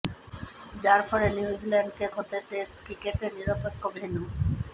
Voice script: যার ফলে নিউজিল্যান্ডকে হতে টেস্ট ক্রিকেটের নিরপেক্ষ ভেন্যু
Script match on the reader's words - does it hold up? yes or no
yes